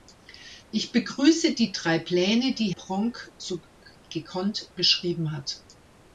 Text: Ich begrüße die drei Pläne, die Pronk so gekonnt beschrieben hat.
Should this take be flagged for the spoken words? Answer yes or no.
no